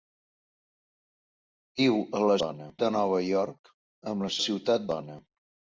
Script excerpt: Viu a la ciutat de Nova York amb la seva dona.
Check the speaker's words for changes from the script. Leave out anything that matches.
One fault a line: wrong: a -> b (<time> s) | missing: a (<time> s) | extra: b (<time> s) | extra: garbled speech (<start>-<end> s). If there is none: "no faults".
wrong: ciutat -> dona (2.5 s)
wrong: seva -> ciutat (4.4 s)